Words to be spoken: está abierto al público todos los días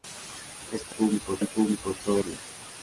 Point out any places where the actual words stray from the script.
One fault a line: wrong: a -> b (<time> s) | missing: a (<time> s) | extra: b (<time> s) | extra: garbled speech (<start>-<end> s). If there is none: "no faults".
wrong: abierto -> público (0.9 s)
missing: los (2.2 s)